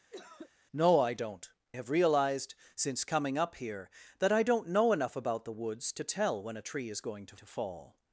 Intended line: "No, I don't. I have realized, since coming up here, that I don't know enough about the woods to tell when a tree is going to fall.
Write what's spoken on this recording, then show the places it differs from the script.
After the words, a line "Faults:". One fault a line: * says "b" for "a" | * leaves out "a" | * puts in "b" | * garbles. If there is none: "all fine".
"No, I don't. have realized, since coming up here, that I don't know enough about the woods to tell when a tree is going to to fall.
Faults:
* leaves out "I"
* puts in "to"